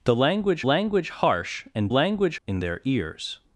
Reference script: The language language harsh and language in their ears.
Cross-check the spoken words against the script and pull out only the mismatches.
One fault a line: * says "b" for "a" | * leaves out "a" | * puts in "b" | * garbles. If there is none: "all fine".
all fine